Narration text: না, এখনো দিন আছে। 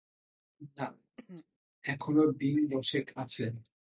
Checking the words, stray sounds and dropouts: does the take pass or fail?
fail